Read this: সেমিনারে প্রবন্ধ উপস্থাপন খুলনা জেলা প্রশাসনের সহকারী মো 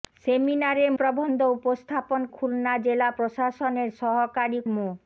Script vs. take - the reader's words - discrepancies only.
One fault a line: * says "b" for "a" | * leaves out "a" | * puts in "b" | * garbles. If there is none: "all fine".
all fine